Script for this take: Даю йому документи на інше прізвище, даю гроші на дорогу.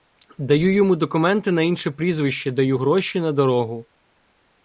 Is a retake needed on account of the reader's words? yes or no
no